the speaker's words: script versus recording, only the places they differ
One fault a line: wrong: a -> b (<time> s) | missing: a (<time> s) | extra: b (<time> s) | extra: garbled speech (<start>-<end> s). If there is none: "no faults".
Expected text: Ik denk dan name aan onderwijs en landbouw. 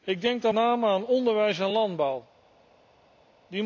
no faults